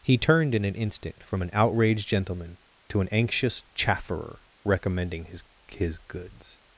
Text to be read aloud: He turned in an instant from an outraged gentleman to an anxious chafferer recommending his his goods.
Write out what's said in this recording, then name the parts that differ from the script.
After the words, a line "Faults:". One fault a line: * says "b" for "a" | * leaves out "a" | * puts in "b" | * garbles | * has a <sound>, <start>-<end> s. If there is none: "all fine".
He turned in an instant from an outraged gentleman to an anxious chafferer recommending his his goods.
Faults:
all fine